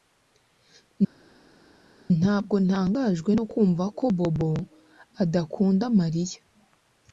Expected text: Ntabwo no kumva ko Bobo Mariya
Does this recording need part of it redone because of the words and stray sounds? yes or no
yes